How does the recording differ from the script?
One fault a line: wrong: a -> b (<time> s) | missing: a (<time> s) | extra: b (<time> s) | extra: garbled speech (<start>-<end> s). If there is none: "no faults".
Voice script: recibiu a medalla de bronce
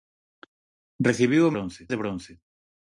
wrong: medalla -> bronce (1.5 s)